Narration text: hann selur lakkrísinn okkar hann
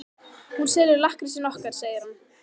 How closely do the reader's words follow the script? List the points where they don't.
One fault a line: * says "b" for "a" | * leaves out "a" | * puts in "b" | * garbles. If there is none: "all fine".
* says "hún" for "hann"
* puts in "segir"